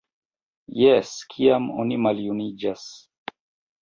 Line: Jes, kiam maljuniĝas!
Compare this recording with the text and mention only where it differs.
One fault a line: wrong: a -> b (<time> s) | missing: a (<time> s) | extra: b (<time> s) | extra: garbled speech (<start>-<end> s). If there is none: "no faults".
extra: oni (1.8 s)